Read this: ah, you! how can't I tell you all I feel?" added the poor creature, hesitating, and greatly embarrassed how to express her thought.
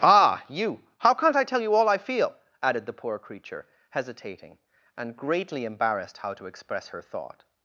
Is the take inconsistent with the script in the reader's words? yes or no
no